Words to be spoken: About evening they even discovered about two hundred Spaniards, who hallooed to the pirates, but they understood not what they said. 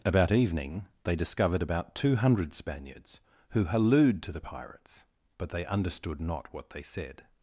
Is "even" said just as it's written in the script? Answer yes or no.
no